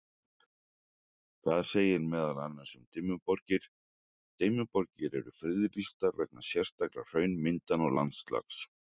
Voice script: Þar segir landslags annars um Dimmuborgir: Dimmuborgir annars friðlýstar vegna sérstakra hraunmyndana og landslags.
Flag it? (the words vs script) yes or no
yes